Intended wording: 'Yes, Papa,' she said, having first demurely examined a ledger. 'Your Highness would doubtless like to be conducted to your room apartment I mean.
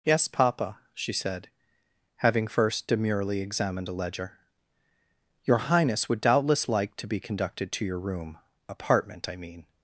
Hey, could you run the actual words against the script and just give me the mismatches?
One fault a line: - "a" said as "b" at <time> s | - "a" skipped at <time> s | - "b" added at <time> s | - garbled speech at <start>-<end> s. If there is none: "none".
none